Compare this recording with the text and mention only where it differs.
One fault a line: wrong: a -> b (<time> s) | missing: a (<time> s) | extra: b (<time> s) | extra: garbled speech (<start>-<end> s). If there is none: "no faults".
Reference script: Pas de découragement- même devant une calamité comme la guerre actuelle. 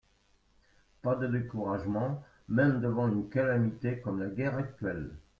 no faults